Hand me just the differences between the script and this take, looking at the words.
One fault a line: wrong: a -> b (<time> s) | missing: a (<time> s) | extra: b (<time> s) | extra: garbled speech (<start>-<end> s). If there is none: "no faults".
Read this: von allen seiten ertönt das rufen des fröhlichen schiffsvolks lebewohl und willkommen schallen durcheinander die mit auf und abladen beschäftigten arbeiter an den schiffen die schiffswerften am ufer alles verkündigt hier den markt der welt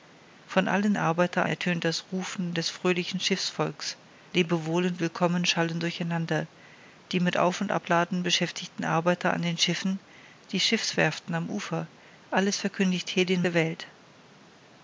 wrong: seiten -> arbeiter (1.0 s)
missing: markt (13.4 s)